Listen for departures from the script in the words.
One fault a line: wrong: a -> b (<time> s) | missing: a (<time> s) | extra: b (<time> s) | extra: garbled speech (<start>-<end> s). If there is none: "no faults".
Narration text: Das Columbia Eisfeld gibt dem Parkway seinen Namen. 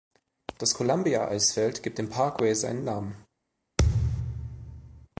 no faults